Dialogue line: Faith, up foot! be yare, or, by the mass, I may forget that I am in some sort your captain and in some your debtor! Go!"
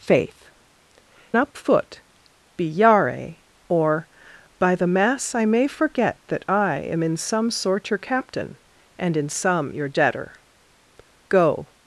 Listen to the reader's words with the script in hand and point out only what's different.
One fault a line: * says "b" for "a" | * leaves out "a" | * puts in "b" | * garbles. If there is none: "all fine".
all fine